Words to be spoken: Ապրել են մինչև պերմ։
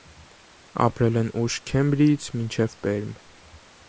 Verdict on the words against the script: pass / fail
fail